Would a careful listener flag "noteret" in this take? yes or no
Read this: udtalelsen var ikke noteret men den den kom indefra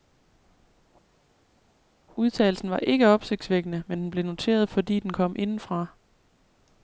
yes